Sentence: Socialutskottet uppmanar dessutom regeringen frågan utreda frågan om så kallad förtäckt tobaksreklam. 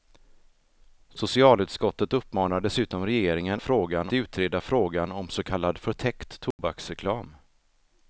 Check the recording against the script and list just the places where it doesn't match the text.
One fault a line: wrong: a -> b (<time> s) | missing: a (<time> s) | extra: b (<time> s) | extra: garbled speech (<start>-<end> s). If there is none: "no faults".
no faults